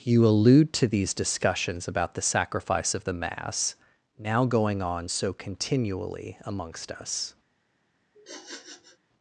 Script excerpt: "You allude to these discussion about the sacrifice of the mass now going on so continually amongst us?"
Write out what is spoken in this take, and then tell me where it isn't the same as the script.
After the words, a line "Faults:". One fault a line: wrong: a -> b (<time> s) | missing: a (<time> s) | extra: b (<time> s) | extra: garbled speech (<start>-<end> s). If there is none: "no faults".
"You allude to these discussions about the sacrifice of the mass now going on so continually amongst us?"
Faults:
wrong: discussion -> discussions (1.1 s)